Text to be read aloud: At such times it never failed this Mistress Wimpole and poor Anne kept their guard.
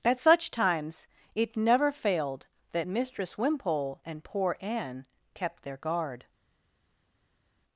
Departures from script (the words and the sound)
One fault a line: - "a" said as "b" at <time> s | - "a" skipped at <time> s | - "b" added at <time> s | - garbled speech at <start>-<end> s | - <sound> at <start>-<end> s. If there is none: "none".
- "this" said as "that" at 2.7 s